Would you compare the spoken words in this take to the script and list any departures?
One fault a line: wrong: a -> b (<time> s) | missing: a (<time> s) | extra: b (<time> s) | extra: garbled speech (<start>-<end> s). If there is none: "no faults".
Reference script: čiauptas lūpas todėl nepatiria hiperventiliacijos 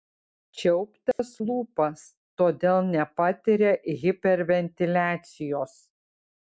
no faults